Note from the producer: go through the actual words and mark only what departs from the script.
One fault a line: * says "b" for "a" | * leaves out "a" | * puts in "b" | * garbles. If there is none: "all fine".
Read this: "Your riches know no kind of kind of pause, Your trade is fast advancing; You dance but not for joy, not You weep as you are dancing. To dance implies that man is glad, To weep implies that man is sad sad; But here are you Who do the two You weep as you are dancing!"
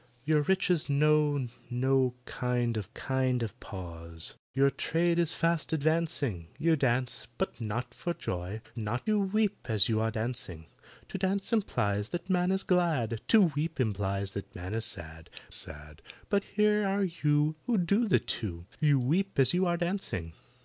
all fine